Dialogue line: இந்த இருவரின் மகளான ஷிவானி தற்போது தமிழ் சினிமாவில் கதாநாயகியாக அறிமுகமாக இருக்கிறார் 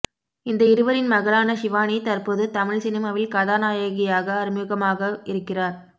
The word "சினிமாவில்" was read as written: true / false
true